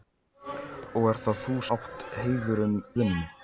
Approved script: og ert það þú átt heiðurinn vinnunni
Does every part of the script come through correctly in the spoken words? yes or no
yes